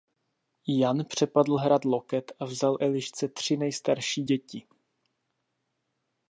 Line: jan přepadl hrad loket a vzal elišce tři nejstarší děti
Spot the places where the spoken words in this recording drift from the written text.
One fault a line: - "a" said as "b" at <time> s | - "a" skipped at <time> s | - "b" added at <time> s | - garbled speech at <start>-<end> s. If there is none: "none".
none